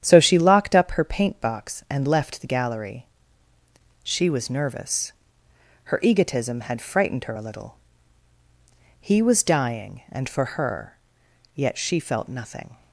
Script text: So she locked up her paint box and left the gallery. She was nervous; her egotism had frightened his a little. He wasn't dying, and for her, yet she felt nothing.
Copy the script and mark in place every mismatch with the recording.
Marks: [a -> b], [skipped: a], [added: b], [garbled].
So she locked up her paint box and left the gallery. She was nervous; her egotism had frightened [his -> her] a little. He [wasn't -> was] dying, and for her, yet she felt nothing.